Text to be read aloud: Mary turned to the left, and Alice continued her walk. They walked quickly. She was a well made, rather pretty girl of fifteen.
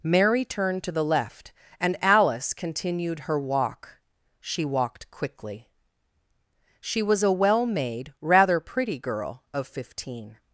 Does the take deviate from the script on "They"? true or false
true